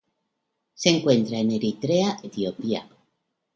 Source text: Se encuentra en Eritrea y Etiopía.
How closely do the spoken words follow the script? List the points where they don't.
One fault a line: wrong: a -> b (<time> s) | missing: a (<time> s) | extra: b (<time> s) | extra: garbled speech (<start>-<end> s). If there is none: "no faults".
missing: y (2.2 s)